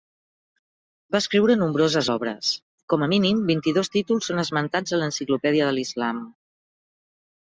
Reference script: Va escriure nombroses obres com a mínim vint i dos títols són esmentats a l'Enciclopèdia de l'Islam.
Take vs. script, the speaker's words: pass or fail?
pass